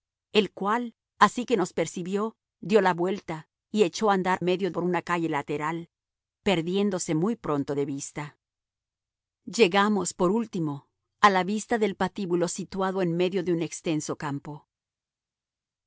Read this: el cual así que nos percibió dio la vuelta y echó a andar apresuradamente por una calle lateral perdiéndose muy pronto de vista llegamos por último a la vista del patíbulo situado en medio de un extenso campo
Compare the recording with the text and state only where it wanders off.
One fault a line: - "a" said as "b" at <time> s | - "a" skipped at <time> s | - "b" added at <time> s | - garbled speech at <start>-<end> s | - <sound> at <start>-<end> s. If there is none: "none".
- "apresuradamente" said as "medio" at 4.4 s